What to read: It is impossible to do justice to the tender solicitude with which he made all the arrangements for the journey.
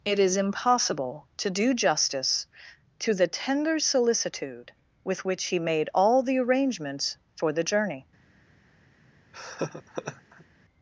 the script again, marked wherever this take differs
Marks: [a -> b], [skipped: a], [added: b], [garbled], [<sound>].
It is impossible to do justice to the tender solicitude with which he made all the arrangements for the journey. [laugh]